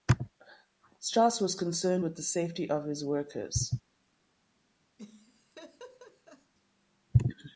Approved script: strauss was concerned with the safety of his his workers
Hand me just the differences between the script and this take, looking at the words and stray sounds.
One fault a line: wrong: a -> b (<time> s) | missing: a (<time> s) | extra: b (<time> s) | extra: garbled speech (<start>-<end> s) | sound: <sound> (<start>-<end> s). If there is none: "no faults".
missing: his (3.0 s)
sound: laugh (5.0-6.5 s)